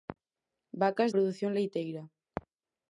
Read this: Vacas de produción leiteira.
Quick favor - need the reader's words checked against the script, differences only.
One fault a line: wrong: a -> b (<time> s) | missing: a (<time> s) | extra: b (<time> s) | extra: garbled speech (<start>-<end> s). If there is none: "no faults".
missing: de (1.1 s)